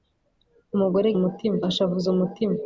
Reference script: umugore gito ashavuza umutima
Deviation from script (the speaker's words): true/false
true